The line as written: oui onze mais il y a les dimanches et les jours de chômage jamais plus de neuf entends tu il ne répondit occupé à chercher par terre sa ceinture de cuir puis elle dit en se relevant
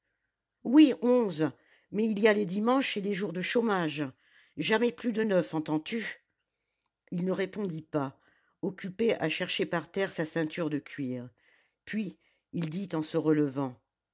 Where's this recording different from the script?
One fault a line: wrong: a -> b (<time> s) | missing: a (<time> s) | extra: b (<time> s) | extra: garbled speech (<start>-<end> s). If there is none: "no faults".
extra: pas (7.8 s)
wrong: elle -> il (12.5 s)